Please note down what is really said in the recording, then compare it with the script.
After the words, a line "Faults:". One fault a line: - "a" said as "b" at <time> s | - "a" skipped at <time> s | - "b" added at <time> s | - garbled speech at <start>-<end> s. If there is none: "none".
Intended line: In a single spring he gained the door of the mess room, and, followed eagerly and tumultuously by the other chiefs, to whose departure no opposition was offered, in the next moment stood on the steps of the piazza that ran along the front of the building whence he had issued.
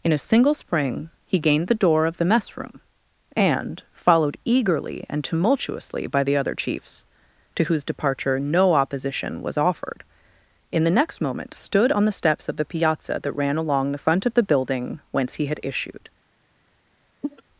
In a single spring he gained the door of the mess room, and, followed eagerly and tumultuously by the other chiefs, to whose departure no opposition was offered, in the next moment stood on the steps of the piazza that ran along the front of the building whence he had issued.
Faults:
none